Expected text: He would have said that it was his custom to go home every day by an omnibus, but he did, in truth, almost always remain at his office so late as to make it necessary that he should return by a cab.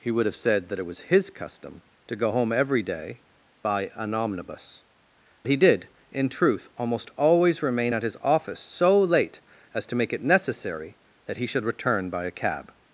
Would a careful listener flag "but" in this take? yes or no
yes